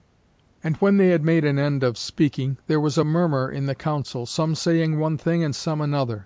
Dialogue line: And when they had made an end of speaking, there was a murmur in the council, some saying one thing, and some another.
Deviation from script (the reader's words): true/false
false